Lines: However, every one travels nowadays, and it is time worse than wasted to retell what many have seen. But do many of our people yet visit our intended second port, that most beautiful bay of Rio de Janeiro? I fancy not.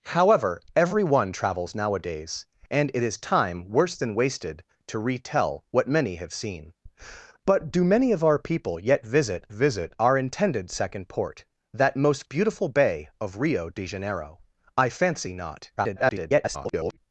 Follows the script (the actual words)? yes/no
no